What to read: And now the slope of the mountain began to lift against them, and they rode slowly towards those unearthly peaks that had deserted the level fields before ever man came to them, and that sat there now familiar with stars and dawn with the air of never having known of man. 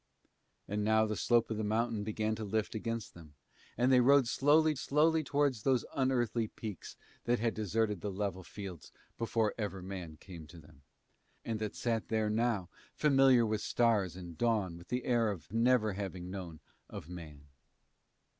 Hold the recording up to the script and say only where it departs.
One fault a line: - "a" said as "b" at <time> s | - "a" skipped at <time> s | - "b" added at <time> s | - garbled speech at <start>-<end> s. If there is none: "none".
- "slowly" added at 4.8 s